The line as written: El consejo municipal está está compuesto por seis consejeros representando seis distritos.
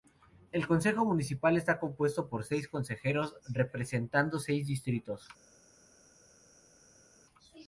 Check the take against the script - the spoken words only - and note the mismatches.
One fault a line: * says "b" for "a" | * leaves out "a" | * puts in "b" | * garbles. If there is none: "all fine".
* leaves out "está"